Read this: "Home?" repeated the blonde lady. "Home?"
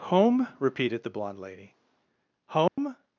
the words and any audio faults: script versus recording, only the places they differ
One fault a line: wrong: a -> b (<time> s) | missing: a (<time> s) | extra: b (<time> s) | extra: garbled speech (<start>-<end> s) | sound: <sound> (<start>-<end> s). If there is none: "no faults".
sound: dropout (2.7-2.8 s)